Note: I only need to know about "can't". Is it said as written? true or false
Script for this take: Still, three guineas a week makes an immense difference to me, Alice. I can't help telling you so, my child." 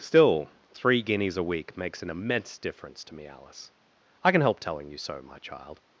false